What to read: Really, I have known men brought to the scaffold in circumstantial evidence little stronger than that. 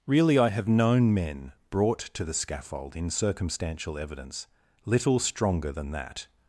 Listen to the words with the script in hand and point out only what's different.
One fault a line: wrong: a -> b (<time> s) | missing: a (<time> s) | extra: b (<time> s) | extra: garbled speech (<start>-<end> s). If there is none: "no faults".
no faults